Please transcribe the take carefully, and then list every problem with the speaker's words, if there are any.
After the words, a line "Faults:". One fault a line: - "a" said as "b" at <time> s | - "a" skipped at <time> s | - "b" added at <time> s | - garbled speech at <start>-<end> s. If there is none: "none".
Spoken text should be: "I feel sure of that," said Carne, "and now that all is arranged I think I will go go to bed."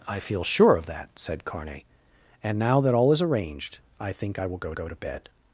"I feel sure of that," said Carne, "and now that all is arranged I think I will go go to bed."
Faults:
none